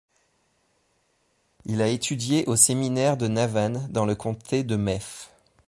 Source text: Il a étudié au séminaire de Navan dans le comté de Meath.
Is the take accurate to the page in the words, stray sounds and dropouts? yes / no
yes